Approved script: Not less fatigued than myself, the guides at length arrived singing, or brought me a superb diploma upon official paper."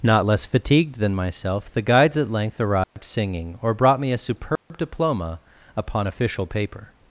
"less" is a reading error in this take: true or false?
false